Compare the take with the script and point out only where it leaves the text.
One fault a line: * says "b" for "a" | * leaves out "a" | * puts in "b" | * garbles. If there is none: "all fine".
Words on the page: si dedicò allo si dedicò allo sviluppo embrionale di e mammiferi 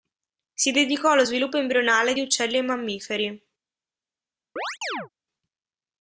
* leaves out "si dedicò allo"
* puts in "uccelli"